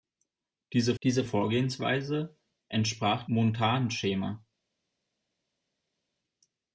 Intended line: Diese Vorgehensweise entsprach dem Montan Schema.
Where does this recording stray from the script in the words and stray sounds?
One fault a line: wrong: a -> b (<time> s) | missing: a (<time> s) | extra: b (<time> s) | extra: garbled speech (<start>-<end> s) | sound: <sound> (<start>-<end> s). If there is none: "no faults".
extra: diese (1.0 s)
missing: dem (3.3 s)